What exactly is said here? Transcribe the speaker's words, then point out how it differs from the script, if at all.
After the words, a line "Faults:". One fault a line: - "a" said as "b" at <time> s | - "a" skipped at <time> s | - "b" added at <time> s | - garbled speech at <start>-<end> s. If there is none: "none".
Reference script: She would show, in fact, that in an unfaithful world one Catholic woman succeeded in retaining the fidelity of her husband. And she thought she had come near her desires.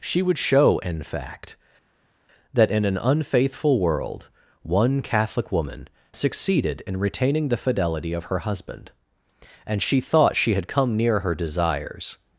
She would show, in fact, that in an unfaithful world one Catholic woman succeeded in retaining the fidelity of her husband. And she thought she had come near her desires.
Faults:
none